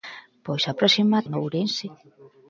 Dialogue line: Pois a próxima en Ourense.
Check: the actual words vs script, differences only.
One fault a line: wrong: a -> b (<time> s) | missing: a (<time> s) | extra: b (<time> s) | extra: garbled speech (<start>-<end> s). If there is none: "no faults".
no faults